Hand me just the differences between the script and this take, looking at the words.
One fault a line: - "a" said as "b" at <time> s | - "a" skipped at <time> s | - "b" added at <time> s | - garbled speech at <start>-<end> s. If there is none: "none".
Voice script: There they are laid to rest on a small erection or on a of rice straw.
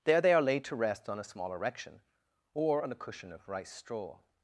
- "cushion" added at 3.0 s